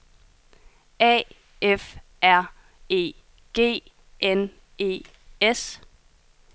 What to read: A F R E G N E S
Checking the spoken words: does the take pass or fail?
pass